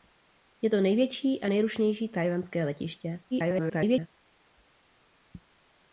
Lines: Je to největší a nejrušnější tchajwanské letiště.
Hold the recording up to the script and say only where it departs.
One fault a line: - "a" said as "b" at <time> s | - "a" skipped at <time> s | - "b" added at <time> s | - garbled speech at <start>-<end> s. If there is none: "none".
- garbled speech at 3.3-4.1 s